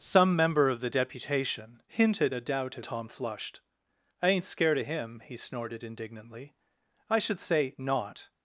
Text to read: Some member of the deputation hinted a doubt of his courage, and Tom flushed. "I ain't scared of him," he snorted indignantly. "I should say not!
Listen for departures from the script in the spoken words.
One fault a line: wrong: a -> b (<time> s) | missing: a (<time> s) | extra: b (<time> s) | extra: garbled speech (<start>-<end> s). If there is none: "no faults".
missing: his courage and (2.9 s)